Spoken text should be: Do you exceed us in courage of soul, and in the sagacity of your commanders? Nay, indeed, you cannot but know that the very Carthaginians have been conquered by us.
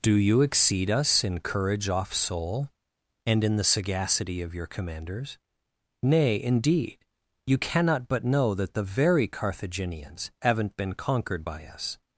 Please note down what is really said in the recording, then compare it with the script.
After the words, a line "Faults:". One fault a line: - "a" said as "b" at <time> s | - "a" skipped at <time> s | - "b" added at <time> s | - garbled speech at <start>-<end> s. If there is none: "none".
Do you exceed us in courage off soul, and in the sagacity of your commanders? Nay, indeed, you cannot but know that the very Carthaginians haven't been conquered by us.
Faults:
- "of" said as "off" at 1.9 s
- "have" said as "haven't" at 10.4 s